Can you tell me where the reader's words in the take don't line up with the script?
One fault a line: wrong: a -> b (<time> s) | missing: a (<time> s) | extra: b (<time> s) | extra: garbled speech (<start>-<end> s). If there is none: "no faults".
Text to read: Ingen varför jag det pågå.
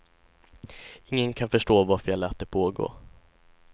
extra: kan förstå (1.3 s)
extra: lät (2.2 s)